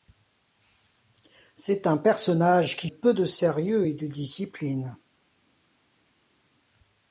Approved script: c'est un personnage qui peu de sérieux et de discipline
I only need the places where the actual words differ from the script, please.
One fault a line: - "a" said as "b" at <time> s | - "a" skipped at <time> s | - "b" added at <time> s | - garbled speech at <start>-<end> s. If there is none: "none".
none